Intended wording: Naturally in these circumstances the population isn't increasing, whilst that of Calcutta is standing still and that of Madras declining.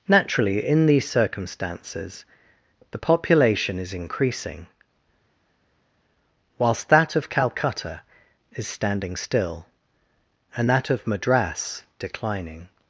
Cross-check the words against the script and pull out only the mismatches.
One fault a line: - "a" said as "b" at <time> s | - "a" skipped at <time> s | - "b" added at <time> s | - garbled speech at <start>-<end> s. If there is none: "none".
- "isn't" said as "is" at 3.8 s